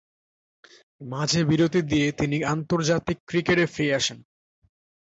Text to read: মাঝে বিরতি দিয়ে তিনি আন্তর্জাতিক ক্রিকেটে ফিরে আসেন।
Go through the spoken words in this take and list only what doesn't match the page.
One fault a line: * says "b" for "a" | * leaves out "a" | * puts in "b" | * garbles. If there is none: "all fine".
all fine